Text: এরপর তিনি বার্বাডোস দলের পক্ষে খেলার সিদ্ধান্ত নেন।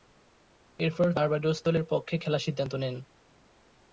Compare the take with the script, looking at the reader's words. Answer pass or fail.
fail